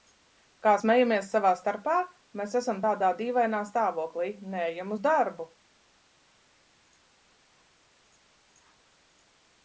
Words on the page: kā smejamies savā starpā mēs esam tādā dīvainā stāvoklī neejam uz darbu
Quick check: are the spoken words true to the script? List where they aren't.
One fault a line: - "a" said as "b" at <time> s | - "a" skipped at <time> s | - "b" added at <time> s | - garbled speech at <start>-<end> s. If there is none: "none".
none